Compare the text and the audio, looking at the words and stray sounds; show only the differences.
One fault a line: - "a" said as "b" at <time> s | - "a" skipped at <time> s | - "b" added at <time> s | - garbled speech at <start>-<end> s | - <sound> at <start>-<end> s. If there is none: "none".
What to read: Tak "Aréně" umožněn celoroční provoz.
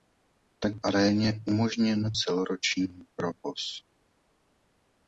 none